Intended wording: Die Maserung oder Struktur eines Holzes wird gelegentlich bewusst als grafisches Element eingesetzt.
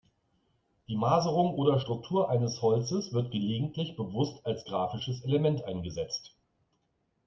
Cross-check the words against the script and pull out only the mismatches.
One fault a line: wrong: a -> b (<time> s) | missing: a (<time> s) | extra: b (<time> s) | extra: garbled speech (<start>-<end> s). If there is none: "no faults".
no faults